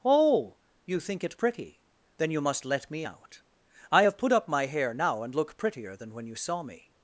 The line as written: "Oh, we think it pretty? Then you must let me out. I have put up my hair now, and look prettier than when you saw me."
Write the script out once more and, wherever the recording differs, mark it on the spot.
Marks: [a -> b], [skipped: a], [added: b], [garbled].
"Oh, [we -> you] think it pretty? Then you must let me out. I have put up my hair now, and look prettier than when you saw me."